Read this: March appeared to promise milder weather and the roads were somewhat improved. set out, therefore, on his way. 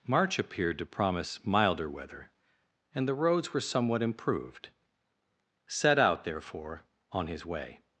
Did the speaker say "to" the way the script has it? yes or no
yes